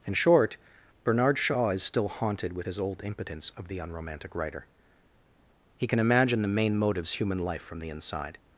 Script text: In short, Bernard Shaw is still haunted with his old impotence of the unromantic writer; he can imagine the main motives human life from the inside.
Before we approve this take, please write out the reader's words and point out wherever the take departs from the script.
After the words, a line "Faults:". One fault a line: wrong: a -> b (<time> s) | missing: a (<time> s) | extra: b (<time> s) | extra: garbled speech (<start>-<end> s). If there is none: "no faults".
In short, Bernard Shaw is still haunted with his old impotence of the unromantic writer; he can imagine the main motives human life from the inside.
Faults:
no faults